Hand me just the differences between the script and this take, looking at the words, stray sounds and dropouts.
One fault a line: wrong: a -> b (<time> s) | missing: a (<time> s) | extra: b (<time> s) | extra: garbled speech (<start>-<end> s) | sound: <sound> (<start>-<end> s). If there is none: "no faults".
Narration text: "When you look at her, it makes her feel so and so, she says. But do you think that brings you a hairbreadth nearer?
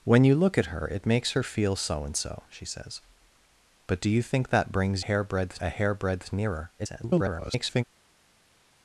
wrong: you -> hairbreadth (5.0 s)
extra: garbled speech (6.8-7.8 s)